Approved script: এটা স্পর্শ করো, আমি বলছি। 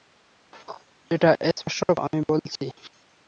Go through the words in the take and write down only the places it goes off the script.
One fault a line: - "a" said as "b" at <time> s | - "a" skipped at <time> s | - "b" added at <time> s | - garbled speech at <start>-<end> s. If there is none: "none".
- "করো" skipped at 1.8 s